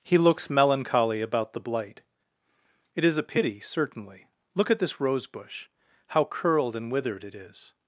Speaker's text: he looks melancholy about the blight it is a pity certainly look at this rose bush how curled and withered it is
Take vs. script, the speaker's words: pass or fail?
pass